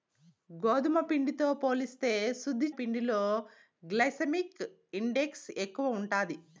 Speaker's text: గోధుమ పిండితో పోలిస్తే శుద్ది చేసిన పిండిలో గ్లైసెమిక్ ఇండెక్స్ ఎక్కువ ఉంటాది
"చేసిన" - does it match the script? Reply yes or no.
no